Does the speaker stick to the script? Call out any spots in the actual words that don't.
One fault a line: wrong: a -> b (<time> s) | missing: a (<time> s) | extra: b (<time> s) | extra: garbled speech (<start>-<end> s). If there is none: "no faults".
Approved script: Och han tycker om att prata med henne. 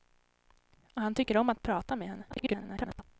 extra: garbled speech (2.3-3.0 s)